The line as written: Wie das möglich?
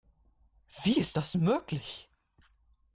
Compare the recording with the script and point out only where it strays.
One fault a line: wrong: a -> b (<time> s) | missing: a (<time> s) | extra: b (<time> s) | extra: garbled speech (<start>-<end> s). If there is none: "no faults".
extra: ist (1.0 s)